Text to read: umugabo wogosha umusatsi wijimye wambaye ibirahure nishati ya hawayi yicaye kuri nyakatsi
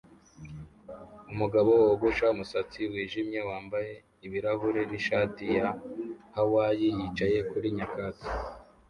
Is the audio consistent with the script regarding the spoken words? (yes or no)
yes